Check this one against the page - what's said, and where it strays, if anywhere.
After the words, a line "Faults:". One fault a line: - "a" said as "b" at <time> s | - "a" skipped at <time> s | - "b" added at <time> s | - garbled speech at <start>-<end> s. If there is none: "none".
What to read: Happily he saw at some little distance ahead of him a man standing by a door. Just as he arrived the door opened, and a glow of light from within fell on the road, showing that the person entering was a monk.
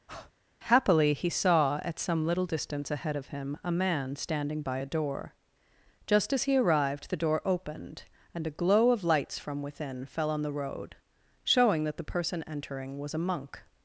Happily he saw at some little distance ahead of him a man standing by a door. Just as he arrived the door opened, and a glow of lights from within fell on the road, showing that the person entering was a monk.
Faults:
- "light" said as "lights" at 9.0 s